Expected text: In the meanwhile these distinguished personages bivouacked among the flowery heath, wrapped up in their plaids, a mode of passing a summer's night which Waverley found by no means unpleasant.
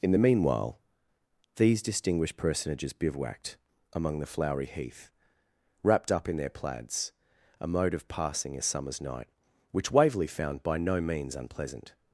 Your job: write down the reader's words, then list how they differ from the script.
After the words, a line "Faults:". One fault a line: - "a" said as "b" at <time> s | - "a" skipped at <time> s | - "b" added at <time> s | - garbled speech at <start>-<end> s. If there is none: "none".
In the meanwhile these distinguished personages bivouacked among the flowery heath, wrapped up in their plaids, a mode of passing a summer's night which Waverley found by no means unpleasant.
Faults:
none